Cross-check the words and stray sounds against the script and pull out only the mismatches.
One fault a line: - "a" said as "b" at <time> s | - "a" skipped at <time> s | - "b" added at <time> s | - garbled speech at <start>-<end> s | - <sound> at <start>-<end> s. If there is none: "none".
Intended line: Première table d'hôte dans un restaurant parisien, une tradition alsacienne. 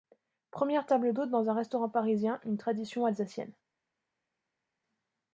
none